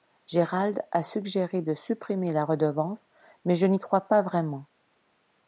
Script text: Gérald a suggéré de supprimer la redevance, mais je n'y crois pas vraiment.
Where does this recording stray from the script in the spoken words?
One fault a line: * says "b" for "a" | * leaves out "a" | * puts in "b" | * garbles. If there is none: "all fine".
all fine